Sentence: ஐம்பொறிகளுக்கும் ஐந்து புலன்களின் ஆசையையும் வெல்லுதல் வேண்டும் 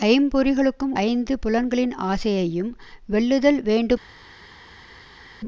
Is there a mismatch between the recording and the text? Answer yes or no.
no